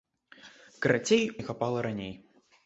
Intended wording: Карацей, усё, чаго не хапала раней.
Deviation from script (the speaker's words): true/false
true